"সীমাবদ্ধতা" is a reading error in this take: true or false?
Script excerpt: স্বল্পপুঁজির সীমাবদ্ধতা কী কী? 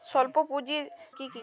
true